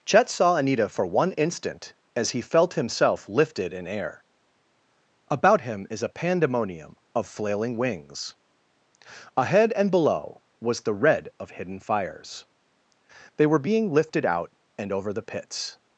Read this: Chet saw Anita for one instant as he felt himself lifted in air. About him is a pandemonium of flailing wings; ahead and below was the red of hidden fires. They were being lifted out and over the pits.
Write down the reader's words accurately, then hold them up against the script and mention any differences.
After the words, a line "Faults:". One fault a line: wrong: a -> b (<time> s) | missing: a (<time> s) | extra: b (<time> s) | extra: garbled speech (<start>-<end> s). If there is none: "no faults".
Chet saw Anita for one instant as he felt himself lifted in air. About him is a pandemonium of flailing wings; ahead and below was the red of hidden fires. They were being lifted out and over the pits.
Faults:
no faults